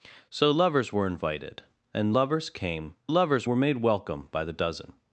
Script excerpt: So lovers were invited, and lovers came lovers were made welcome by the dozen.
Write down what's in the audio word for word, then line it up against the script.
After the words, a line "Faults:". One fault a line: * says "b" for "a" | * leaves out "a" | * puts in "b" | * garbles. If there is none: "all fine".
So lovers were invited, and lovers came lovers were made welcome by the dozen.
Faults:
all fine